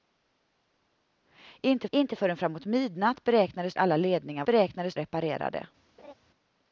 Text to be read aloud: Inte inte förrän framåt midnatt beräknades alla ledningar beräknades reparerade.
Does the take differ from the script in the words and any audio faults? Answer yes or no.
yes